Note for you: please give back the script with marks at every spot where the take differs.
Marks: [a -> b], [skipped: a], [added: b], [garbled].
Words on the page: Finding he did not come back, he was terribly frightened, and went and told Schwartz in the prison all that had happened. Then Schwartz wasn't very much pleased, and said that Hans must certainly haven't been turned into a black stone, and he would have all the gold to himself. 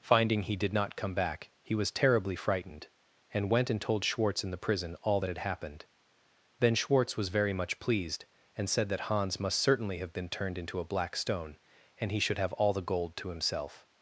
Finding he did not come back, he was terribly frightened, and went and told Schwartz in the prison all that had happened. Then Schwartz [wasn't -> was] very much pleased, and said that Hans must certainly [haven't -> have] been turned into a black stone, and he [would -> should] have all the gold to himself.